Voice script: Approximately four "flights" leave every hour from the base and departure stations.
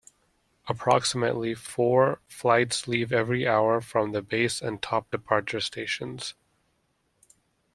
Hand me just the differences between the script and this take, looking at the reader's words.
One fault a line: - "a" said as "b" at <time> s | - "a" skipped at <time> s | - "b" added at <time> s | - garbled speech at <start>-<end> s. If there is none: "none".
- "top" added at 4.8 s